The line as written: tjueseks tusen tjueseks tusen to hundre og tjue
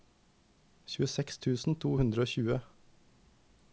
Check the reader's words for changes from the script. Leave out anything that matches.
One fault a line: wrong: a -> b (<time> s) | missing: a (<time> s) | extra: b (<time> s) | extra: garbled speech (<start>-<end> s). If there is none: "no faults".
missing: tjueseks tusen (1.8 s)